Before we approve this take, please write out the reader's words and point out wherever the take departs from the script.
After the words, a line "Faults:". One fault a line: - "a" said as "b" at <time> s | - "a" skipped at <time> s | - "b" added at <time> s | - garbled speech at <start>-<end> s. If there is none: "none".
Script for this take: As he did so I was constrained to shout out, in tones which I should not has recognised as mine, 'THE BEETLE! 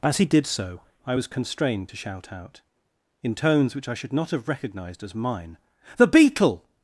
As he did so I was constrained to shout out, in tones which I should not have recognised as mine, 'THE BEETLE!
Faults:
- "has" said as "have" at 4.3 s